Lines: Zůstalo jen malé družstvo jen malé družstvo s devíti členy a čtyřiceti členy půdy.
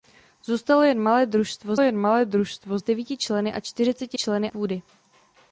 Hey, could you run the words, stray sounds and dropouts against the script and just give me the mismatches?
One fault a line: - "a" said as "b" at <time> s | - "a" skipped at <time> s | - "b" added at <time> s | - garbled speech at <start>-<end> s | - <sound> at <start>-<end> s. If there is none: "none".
none